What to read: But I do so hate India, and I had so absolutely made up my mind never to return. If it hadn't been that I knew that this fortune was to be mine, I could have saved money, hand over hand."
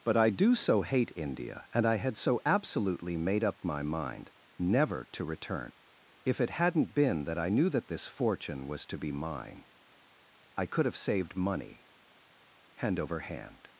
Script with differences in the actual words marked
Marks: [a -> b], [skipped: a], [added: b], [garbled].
But I do so hate India, and I had so absolutely made up my mind never to return. If it hadn't been that I knew that this fortune was to be mine, I could have saved money, hand over hand."